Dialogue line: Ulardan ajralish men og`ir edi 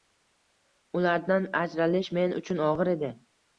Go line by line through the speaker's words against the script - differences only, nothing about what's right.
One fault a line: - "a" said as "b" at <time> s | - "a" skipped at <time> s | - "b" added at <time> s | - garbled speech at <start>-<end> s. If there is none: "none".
- "uchun" added at 2.4 s